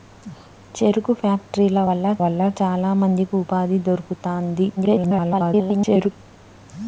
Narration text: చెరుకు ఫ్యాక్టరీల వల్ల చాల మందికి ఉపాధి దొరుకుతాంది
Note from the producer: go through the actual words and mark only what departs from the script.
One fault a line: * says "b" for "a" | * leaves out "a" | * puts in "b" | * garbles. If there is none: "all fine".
* puts in "వల్ల"
* garbles